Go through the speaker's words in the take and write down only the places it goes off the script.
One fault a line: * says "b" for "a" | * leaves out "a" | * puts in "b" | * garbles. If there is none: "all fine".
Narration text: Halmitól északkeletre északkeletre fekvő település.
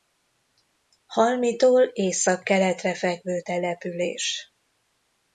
* leaves out "északkeletre"